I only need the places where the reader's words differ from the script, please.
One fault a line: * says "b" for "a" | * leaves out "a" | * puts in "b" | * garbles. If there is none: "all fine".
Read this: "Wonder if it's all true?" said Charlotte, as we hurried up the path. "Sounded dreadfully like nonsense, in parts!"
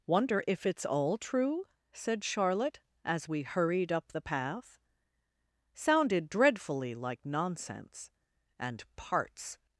* says "and" for "in"